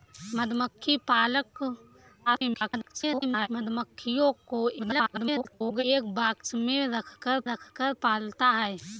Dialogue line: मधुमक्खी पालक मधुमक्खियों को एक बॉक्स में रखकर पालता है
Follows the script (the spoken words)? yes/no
no